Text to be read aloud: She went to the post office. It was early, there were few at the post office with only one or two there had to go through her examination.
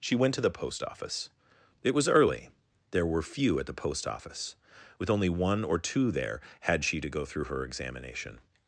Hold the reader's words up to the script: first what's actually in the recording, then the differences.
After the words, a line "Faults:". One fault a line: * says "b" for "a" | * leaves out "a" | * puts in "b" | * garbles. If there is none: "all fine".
She went to the post office. It was early, there were few at the post office with only one or two there had she to go through her examination.
Faults:
* puts in "she"